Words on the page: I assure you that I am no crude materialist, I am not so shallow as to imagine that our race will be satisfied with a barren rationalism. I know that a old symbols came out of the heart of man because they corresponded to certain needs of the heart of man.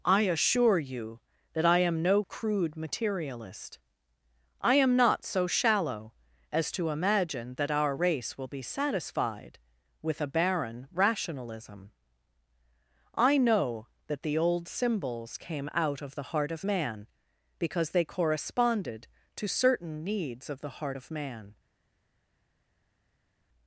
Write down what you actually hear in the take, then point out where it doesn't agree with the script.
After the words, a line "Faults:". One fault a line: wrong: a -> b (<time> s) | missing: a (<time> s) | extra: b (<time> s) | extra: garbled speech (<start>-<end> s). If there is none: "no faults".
I assure you that I am no crude materialist, I am not so shallow as to imagine that our race will be satisfied with a barren rationalism. I know that the old symbols came out of the heart of man because they corresponded to certain needs of the heart of man.
Faults:
wrong: a -> the (14.2 s)